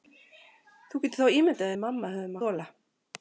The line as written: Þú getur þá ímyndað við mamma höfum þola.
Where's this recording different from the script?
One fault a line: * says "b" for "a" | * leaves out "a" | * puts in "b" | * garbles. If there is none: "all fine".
all fine